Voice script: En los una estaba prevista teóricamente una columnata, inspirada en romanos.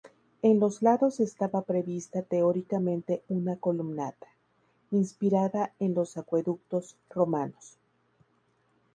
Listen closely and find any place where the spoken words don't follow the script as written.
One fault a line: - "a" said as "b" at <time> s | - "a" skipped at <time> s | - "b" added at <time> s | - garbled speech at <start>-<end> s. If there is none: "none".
- "una" said as "lados" at 0.8 s
- "los acueductos" added at 5.9 s